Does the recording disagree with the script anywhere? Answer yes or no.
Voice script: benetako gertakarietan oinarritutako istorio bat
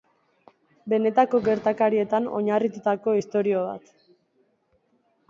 no